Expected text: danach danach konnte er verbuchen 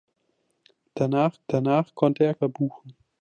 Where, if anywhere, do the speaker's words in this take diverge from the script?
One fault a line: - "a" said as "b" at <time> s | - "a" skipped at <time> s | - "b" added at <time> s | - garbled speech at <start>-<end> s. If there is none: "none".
none